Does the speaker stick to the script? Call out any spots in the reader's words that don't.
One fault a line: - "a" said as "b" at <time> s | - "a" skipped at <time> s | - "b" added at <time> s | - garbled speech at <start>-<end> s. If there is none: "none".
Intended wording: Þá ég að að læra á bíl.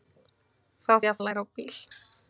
none